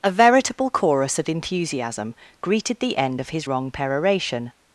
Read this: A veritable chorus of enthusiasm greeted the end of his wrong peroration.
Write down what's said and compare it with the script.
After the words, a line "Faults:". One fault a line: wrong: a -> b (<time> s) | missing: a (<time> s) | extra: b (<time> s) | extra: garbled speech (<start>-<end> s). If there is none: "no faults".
A veritable chorus of enthusiasm greeted the end of his wrong peroration.
Faults:
no faults